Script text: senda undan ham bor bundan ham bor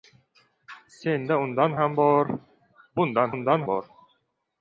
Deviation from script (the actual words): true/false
true